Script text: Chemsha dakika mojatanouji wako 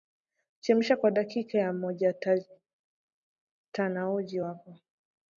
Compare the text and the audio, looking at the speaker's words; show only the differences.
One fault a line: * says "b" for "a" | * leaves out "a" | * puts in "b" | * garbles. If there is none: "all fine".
* puts in "kwa"